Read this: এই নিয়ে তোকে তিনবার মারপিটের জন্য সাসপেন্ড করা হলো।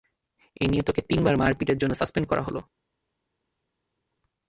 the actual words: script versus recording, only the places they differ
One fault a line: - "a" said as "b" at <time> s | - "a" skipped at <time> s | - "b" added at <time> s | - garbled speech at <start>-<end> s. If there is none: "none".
none